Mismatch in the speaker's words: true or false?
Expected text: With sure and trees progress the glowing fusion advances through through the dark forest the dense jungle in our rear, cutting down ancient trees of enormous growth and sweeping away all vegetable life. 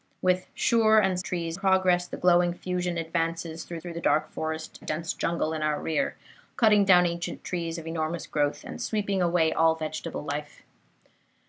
false